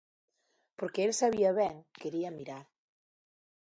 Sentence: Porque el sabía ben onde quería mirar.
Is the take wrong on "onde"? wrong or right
wrong